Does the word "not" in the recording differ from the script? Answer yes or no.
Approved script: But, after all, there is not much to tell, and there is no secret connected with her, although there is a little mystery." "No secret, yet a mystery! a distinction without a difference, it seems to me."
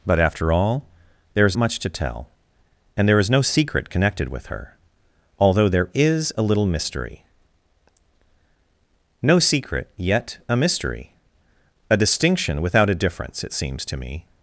yes